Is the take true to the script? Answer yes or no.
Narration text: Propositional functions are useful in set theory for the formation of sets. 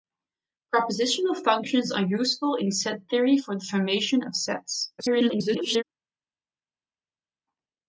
no